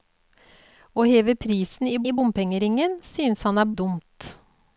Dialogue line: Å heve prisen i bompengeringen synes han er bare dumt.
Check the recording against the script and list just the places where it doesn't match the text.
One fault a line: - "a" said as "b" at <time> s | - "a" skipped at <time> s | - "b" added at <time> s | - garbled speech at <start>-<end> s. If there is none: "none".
- "i" added at 2.0 s
- "bare" skipped at 3.7 s